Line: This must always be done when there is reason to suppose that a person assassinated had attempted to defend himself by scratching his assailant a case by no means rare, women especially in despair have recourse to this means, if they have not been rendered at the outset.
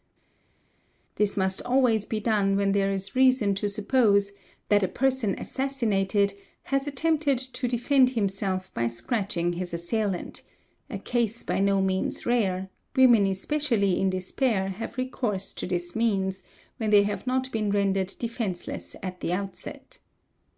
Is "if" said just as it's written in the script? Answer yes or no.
no